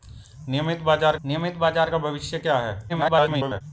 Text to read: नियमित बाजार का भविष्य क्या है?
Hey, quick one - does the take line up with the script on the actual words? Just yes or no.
no